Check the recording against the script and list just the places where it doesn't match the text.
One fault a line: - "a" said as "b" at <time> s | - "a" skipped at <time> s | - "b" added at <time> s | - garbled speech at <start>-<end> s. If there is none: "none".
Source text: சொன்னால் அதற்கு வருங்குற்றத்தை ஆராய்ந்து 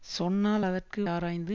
- "வருங்குற்றத்தை" skipped at 1.0 s